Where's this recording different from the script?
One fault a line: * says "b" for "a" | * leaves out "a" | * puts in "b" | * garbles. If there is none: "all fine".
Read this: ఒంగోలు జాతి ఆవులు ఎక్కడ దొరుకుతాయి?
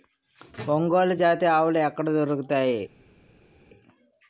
all fine